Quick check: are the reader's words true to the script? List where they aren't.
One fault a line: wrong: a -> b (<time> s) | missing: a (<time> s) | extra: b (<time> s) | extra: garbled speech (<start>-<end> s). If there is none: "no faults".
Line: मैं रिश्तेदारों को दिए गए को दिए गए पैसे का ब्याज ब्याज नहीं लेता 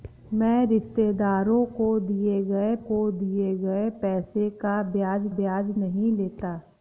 no faults